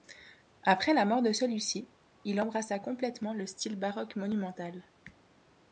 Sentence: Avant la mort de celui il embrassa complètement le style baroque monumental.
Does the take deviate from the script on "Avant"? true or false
true